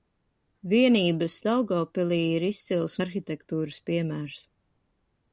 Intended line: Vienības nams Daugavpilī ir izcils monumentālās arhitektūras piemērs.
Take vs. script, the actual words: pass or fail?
fail